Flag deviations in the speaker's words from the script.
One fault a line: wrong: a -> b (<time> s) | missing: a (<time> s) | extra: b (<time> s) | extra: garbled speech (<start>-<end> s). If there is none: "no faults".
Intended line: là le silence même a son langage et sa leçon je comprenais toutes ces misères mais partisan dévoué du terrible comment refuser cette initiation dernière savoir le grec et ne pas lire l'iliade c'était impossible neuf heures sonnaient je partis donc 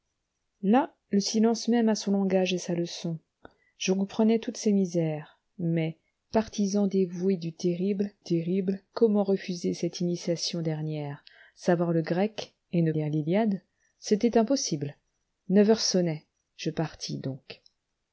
extra: terrible (8.2 s)
missing: pas (12.9 s)